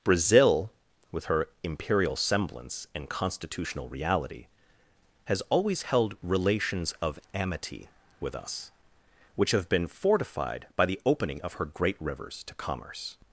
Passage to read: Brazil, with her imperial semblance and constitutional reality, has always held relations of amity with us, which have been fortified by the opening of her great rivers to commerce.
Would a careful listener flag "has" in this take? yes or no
no